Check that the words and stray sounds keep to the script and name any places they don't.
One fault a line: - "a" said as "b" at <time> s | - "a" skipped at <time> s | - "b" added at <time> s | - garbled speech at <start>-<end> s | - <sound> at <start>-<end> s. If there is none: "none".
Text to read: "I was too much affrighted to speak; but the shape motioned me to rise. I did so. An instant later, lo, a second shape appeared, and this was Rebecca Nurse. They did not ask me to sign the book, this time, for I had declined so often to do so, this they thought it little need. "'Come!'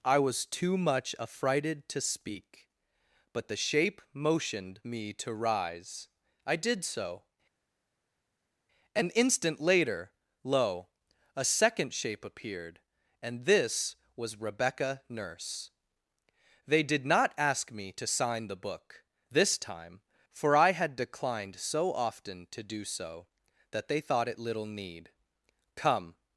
- "this" said as "that" at 23.7 s